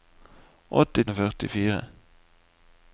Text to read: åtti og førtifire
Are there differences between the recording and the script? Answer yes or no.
no